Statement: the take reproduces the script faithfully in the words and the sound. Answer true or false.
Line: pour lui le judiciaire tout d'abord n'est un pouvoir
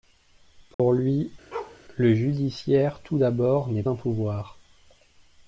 false